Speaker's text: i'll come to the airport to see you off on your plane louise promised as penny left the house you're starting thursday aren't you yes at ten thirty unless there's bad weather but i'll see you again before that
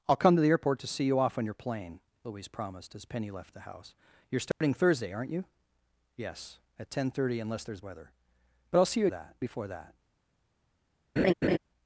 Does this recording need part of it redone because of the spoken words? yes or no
yes